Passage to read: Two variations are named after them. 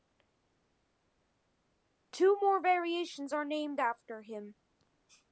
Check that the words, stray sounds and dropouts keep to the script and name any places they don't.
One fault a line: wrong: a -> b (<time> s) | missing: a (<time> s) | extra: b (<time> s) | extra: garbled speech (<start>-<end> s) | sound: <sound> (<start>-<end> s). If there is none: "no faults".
extra: more (2.4 s)
wrong: them -> him (4.2 s)